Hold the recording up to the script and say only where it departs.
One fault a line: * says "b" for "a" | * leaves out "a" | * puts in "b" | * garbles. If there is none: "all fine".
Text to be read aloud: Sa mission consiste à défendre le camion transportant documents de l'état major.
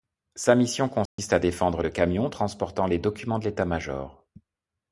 * puts in "les"